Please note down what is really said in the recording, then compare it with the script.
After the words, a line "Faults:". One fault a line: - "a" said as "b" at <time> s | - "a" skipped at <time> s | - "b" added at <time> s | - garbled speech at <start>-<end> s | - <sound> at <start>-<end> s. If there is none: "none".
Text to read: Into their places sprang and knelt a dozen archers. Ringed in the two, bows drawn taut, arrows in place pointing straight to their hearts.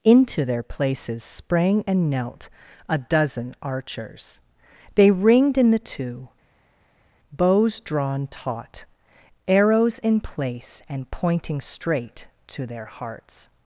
Into their places sprang and knelt a dozen archers. They ringed in the two, bows drawn taut, arrows in place and pointing straight to their hearts.
Faults:
- "They" added at 5.0 s
- "and" added at 10.9 s